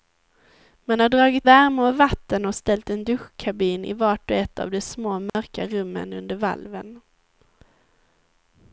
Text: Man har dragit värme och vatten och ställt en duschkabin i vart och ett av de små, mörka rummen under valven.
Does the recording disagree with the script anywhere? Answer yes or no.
no